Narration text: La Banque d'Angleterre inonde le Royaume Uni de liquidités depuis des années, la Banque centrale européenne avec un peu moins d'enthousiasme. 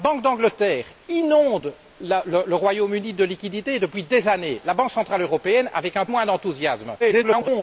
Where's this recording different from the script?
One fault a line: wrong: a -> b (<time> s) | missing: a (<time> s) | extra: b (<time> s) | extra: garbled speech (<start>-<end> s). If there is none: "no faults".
missing: peu (6.1 s)
extra: garbled speech (7.0-7.6 s)